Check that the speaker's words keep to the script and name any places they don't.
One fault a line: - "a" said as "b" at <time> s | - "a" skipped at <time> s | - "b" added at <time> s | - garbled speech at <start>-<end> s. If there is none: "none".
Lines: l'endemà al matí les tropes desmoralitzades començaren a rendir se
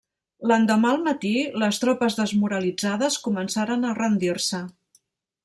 none